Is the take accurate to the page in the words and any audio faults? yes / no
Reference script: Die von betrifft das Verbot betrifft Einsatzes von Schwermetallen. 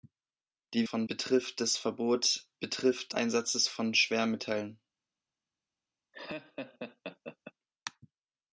no